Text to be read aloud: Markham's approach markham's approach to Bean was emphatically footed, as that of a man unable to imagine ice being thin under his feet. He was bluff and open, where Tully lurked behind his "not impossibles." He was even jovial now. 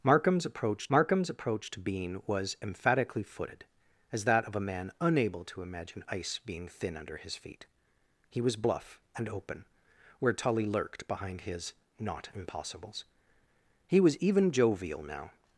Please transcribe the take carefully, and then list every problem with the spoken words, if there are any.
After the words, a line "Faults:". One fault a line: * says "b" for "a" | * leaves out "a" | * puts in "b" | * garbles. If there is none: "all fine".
Markham's approach markham's approach to Bean was emphatically footed, as that of a man unable to imagine ice being thin under his feet. He was bluff and open, where Tully lurked behind his "not impossibles." He was even jovial now.
Faults:
all fine